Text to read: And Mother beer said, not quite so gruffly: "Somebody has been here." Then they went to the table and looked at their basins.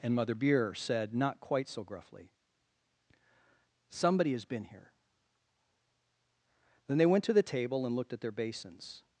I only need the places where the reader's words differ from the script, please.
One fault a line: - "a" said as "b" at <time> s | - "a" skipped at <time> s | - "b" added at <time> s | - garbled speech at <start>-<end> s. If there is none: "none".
none